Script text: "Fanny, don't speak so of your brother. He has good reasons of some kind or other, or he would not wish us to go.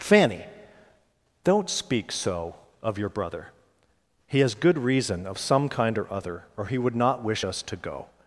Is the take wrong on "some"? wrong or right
right